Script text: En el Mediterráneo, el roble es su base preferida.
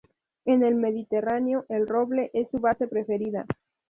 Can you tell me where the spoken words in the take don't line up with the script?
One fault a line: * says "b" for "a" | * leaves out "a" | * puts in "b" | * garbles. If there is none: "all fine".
all fine